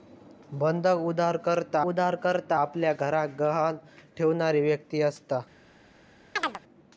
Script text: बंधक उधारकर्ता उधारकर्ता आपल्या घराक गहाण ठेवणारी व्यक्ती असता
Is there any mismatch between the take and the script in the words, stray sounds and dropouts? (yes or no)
yes